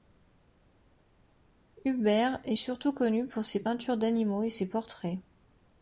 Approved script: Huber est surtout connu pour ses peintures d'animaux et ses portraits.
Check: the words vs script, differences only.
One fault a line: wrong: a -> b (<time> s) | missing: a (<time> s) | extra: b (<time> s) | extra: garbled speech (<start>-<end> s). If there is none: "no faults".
no faults